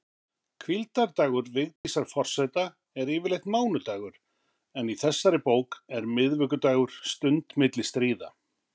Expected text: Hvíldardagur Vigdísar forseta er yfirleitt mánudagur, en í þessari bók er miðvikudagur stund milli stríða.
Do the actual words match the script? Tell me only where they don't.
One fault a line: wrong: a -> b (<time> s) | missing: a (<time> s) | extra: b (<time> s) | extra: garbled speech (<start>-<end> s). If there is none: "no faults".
no faults